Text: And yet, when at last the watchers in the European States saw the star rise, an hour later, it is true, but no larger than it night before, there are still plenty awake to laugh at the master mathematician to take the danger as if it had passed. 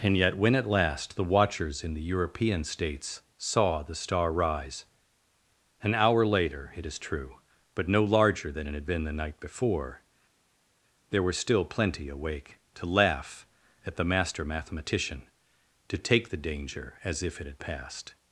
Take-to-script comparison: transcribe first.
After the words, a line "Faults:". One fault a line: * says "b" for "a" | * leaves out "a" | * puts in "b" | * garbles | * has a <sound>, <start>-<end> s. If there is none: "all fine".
And yet, when at last the watchers in the European States saw the star rise, an hour later, it is true, but no larger than it had been the night before, there were still plenty awake to laugh at the master mathematician to take the danger as if it had passed.
Faults:
* puts in "had been the"
* says "were" for "are"